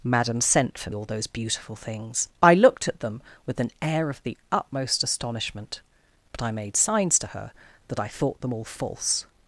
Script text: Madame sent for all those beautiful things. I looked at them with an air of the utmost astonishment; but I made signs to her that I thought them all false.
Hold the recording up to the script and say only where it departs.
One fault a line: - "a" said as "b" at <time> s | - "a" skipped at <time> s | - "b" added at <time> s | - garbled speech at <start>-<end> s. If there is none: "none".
none